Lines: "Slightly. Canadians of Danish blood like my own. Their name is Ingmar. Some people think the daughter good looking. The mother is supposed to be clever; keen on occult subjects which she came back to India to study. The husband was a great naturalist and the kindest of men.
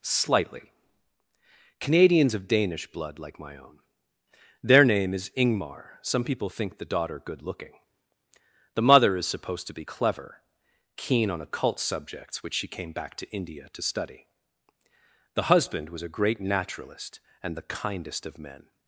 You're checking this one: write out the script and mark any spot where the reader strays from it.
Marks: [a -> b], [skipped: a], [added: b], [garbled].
"Slightly. Canadians of Danish blood like my own. Their name is Ingmar. Some people think the daughter good looking. The mother is supposed to be clever; keen on occult subjects which she came back to India to study. The husband was a great naturalist and the kindest of men.